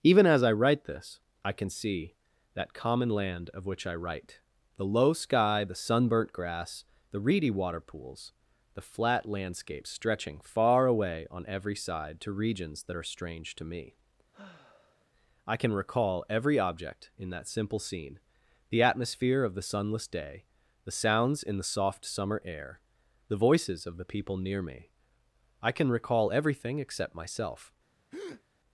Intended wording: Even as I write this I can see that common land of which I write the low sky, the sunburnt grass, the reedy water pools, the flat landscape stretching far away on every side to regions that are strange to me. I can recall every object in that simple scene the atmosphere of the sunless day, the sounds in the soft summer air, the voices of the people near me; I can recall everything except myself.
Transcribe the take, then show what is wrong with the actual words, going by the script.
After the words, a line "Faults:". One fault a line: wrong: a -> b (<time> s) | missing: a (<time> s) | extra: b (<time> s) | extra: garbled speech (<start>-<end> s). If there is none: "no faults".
Even as I write this I can see that common land of which I write the low sky, the sunburnt grass, the reedy water pools, the flat landscape stretching far away on every side to regions that are strange to me. I can recall every object in that simple scene the atmosphere of the sunless day, the sounds in the soft summer air, the voices of the people near me; I can recall everything except myself.
Faults:
no faults